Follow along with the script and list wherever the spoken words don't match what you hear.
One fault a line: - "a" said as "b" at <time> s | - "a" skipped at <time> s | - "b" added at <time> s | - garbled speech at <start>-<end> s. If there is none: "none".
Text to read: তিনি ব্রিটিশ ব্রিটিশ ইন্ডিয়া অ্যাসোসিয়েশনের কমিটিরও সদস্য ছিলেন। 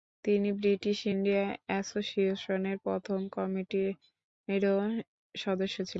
- "ব্রিটিশ" skipped at 1.0 s
- "প্রথম" added at 2.8 s